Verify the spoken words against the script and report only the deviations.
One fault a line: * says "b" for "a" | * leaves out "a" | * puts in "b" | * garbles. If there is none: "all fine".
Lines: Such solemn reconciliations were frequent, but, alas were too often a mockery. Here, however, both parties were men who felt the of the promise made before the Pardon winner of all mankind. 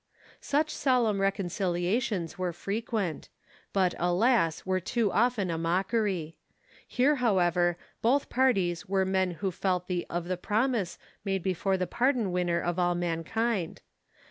all fine